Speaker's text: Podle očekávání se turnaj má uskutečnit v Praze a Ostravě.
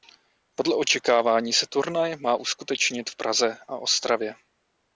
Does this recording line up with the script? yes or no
yes